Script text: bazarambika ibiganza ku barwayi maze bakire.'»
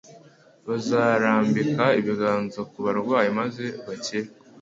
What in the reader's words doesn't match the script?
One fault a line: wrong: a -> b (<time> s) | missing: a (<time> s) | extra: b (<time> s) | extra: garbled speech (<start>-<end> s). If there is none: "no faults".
no faults